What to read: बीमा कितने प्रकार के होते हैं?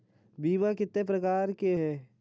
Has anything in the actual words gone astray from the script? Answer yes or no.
yes